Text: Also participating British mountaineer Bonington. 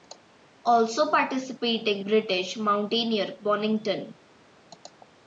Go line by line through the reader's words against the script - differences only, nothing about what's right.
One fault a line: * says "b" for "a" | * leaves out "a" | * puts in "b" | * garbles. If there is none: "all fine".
all fine